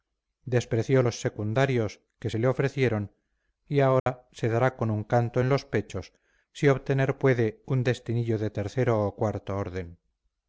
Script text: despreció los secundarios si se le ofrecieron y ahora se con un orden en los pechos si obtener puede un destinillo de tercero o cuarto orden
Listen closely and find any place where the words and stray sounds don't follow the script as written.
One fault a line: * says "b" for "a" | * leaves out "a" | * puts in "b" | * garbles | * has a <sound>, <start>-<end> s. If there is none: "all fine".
* says "que" for "si"
* has a dropout, 4.0-4.1 s
* puts in "dará"
* says "canto" for "orden"